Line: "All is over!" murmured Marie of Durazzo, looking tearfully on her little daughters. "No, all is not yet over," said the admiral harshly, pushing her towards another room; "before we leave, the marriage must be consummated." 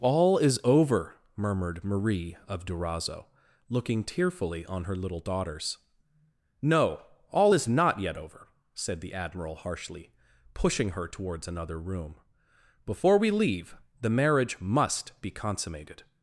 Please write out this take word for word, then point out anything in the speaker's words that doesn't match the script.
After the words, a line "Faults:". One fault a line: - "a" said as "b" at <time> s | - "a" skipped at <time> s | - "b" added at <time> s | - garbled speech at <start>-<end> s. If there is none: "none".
"All is over!" murmured Marie of Durazzo, looking tearfully on her little daughters. "No, all is not yet over," said the admiral harshly, pushing her towards another room; "before we leave, the marriage must be consummated."
Faults:
none